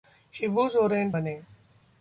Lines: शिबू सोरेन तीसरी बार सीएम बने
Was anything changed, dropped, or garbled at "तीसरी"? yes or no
yes